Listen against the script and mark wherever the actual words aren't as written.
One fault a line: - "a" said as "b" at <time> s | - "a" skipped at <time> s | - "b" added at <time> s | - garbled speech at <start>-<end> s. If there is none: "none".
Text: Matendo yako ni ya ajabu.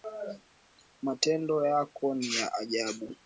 none